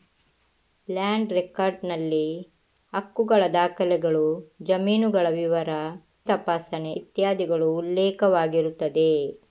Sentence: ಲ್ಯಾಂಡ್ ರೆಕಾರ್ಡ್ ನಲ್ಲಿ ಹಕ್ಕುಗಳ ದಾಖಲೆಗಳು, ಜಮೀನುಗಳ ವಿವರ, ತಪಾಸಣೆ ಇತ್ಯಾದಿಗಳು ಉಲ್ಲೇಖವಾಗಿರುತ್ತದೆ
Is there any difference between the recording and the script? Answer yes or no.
no